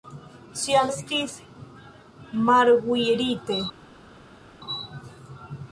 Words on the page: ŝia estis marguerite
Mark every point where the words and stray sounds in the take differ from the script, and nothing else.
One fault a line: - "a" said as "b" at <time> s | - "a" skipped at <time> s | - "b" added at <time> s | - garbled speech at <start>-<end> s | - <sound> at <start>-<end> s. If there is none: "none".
none